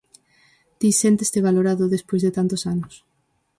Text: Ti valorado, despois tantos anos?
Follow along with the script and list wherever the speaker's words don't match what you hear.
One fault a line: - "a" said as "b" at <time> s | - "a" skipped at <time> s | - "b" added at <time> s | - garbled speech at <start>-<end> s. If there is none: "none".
- "sénteste" added at 1.0 s
- "de" added at 2.2 s